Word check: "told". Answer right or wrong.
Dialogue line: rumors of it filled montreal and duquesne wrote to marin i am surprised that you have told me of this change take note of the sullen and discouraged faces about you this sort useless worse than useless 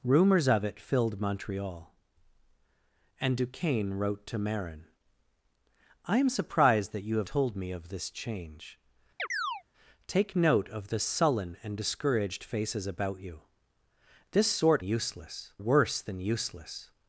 right